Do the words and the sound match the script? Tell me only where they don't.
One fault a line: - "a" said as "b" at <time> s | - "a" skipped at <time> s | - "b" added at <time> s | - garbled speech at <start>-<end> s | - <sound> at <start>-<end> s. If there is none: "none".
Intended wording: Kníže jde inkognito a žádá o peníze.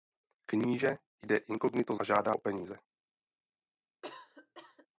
- cough at 4.0-4.9 s